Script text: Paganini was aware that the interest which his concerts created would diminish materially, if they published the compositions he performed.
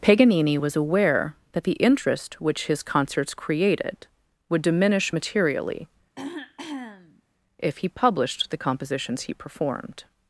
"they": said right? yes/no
no